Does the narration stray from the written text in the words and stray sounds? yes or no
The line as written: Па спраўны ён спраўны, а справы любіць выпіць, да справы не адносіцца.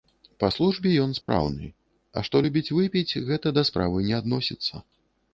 yes